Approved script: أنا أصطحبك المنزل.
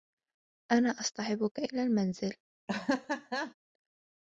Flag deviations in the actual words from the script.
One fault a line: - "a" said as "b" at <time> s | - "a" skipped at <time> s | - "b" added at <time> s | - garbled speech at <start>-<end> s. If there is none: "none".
- "إلى" added at 1.6 s